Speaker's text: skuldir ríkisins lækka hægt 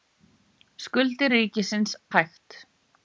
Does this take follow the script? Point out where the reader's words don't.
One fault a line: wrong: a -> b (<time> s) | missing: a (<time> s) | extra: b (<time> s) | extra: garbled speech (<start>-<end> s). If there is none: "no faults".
missing: lækka (2.0 s)